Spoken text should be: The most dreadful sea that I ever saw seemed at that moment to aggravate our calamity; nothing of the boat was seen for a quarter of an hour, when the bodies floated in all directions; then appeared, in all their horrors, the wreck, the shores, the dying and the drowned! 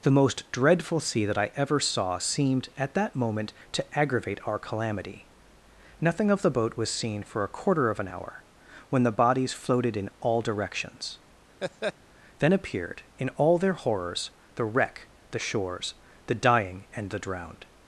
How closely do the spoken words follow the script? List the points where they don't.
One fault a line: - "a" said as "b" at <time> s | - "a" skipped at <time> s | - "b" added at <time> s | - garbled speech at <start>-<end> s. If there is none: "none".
none